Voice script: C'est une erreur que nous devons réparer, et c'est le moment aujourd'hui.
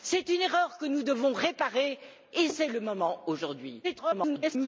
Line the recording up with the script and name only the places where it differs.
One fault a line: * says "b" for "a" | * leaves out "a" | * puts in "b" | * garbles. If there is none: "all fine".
* garbles